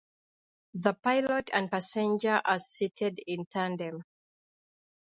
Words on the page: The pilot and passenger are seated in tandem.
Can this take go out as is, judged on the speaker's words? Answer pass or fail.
pass